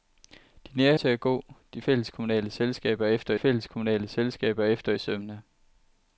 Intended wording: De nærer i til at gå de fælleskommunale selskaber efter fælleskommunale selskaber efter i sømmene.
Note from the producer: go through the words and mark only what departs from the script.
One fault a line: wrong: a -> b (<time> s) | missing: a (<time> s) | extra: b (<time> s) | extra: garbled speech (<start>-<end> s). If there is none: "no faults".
no faults